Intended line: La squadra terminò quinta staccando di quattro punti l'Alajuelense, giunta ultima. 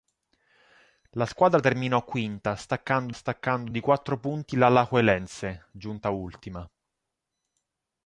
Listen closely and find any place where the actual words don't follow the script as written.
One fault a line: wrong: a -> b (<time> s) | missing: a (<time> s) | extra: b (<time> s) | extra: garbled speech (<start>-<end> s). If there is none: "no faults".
extra: staccando (3.1 s)